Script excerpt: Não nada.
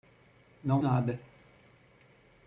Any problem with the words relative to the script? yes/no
no